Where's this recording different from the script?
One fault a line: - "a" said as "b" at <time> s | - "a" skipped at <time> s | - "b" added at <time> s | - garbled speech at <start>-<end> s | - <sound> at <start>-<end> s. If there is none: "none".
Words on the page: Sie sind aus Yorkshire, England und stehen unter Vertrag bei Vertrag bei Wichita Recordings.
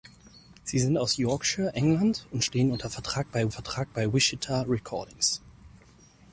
none